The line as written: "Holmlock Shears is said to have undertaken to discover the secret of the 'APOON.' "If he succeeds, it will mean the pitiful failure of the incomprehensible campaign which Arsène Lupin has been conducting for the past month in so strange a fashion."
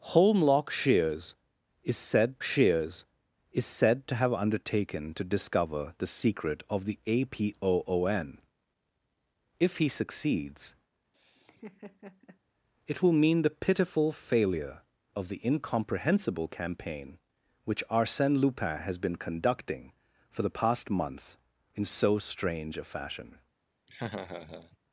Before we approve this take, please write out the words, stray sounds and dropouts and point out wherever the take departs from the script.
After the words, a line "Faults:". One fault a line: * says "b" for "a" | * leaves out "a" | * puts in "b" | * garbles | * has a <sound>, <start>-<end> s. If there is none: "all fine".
"Holmlock Shears is said Shears is said to have undertaken to discover the secret of the 'APOON.' "If he succeeds, it will mean the pitiful failure of the incomprehensible campaign which Arsène Lupin has been conducting for the past month in so strange a fashion."
Faults:
* puts in "Shears is said"
* has a laugh, 11.1-12.4 s
* has a laugh, 23.9-24.8 s